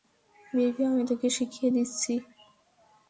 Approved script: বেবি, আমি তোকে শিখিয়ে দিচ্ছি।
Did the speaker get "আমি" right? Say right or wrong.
right